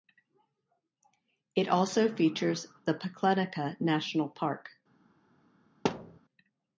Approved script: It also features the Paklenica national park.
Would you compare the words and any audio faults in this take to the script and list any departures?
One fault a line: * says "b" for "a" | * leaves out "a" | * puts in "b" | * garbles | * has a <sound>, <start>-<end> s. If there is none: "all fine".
* has a thud, 5.8-6.2 s